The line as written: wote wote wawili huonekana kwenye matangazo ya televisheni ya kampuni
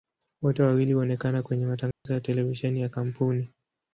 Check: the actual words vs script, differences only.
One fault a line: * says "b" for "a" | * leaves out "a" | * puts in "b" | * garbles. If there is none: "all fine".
* leaves out "wote"